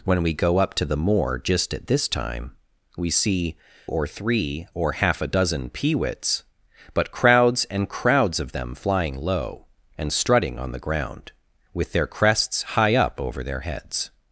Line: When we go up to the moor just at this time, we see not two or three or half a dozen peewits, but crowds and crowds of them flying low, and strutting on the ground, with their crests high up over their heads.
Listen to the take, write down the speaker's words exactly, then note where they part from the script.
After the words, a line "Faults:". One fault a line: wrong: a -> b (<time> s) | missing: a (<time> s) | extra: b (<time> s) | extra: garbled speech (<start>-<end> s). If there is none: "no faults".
When we go up to the moor just at this time, we see or three or half a dozen peewits, but crowds and crowds of them flying low, and strutting on the ground, with their crests high up over their heads.
Faults:
missing: not two (3.5 s)